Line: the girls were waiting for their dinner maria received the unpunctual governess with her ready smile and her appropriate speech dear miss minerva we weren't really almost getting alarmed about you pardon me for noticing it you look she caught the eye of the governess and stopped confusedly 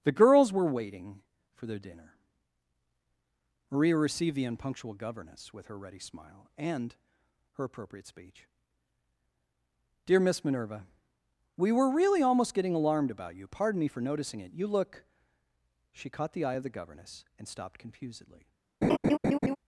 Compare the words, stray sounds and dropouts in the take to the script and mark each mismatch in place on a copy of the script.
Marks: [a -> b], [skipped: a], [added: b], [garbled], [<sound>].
the girls were waiting for their dinner maria received the unpunctual governess with her ready smile and her appropriate speech dear miss minerva we [weren't -> were] really almost getting alarmed about you pardon me for noticing it you look she caught the eye of the governess and stopped confusedly [laugh]